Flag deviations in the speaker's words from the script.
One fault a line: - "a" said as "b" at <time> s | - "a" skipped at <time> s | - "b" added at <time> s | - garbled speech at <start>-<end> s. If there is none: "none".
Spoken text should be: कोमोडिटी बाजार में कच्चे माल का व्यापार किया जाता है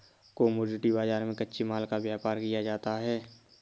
none